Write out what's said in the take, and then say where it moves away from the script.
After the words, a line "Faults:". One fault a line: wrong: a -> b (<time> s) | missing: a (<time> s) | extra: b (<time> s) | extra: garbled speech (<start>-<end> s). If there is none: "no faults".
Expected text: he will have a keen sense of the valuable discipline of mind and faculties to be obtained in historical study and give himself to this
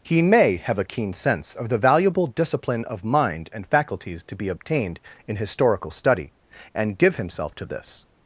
he may have a keen sense of the valuable discipline of mind and faculties to be obtained in historical study and give himself to this
Faults:
wrong: will -> may (0.2 s)